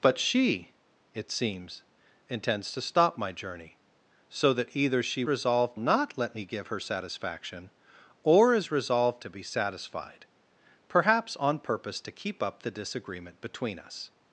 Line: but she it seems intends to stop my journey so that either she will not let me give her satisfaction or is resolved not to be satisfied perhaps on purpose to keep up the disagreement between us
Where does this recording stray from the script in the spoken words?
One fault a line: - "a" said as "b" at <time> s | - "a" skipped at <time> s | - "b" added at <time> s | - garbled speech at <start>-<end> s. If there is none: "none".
- "will" said as "resolved" at 5.3 s
- "not" skipped at 9.2 s